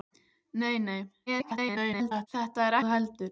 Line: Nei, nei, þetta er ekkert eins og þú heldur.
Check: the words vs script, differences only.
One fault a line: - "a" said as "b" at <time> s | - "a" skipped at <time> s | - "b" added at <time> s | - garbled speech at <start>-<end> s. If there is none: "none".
- garbled speech at 1.3-2.3 s
- "ekkert eins og" skipped at 2.8 s